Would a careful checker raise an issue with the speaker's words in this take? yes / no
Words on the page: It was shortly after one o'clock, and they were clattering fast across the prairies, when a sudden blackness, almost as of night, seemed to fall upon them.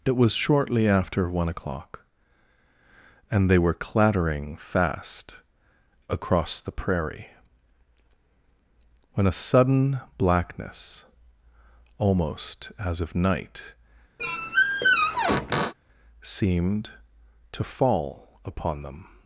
yes